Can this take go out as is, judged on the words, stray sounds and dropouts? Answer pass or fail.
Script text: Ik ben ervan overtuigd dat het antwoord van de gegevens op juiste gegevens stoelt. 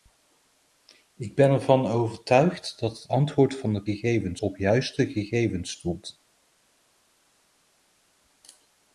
pass